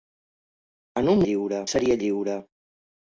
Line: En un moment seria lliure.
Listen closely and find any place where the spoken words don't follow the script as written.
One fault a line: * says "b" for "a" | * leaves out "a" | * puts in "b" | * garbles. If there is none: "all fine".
* says "lliure" for "moment"